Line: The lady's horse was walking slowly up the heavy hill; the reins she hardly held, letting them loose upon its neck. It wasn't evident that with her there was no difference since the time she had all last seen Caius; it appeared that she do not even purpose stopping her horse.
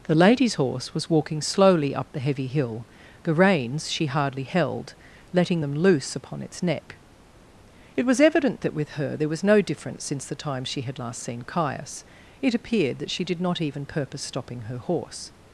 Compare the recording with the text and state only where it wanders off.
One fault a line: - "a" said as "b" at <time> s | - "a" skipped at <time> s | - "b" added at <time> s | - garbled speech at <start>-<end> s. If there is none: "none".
- "wasn't" said as "was" at 8.1 s
- "all" skipped at 11.0 s
- "do" said as "did" at 13.3 s